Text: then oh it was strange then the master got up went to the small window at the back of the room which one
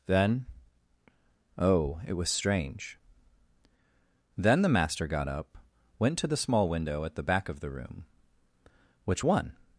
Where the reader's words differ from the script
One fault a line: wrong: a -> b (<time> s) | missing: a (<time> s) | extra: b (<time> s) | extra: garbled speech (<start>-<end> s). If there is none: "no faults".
no faults